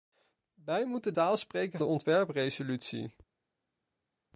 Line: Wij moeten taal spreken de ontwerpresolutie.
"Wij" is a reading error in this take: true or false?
false